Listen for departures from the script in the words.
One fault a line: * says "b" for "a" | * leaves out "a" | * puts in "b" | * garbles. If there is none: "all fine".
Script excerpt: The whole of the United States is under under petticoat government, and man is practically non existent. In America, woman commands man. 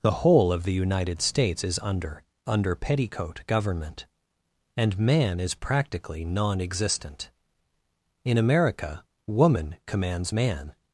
all fine